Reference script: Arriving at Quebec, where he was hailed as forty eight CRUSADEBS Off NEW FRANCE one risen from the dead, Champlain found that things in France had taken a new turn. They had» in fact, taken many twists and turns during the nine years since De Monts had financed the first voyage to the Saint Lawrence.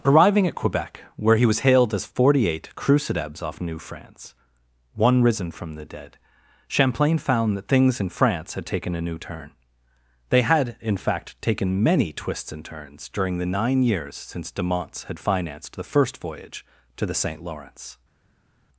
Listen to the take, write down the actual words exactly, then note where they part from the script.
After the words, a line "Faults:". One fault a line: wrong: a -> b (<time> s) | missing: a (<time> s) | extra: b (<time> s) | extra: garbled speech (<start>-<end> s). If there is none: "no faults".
Arriving at Quebec, where he was hailed as forty eight CRUSADEBS Off NEW FRANCE one risen from the dead, Champlain found that things in France had taken a new turn. They had» in fact, taken many twists and turns during the nine years since De Monts had financed the first voyage to the Saint Lawrence.
Faults:
no faults